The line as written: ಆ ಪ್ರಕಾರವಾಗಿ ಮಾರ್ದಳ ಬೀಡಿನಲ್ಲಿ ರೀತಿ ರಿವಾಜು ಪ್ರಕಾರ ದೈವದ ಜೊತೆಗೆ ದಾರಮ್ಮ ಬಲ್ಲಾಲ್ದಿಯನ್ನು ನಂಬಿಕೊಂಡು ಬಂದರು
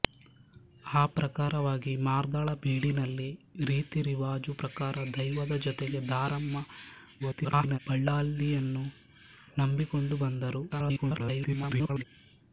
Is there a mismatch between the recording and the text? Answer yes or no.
yes